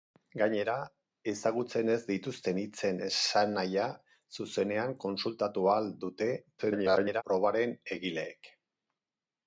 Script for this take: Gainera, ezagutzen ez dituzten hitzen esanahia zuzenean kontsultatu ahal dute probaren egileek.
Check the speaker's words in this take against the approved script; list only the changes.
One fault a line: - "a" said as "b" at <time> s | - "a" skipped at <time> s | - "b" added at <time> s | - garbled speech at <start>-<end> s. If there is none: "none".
- garbled speech at 6.6-7.2 s